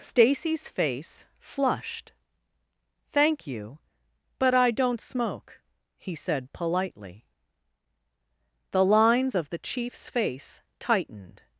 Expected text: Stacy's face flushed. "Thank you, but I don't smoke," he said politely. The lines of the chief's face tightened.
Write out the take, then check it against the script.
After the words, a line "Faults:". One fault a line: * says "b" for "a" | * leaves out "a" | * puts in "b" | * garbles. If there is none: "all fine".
Stacy's face flushed. "Thank you, but I don't smoke," he said politely. The lines of the chief's face tightened.
Faults:
all fine